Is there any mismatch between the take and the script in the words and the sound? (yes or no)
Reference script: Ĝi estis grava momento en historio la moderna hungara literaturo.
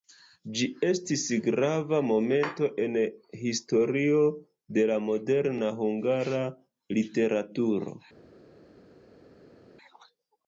yes